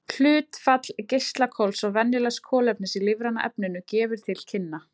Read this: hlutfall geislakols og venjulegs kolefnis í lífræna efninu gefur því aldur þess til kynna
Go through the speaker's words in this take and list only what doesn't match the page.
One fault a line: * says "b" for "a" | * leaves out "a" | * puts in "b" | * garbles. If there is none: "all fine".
* leaves out "því aldur þess"